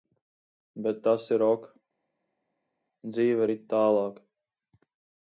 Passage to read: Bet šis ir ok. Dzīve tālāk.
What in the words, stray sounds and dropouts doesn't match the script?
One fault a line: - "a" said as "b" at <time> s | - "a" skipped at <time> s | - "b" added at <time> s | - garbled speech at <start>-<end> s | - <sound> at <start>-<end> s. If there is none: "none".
- "šis" said as "tas" at 1.1 s
- "rit" added at 3.5 s